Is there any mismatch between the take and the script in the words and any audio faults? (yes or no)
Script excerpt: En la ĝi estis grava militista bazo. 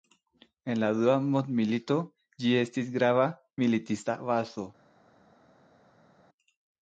yes